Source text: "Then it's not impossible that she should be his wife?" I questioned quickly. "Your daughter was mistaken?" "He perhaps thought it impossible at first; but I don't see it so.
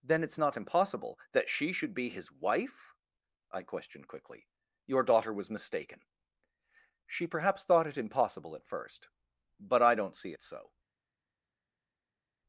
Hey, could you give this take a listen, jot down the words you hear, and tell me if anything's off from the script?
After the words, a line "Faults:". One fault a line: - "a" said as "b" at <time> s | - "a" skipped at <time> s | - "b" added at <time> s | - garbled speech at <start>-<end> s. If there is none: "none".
"Then it's not impossible that she should be his wife?" I questioned quickly. "Your daughter was mistaken?" "She perhaps thought it impossible at first; but I don't see it so.
Faults:
- "He" said as "She" at 7.1 s